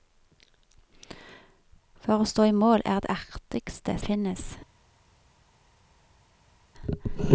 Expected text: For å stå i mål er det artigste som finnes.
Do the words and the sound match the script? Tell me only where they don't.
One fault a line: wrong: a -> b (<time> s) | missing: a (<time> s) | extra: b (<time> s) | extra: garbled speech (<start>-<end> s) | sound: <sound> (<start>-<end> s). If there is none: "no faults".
missing: som (4.0 s)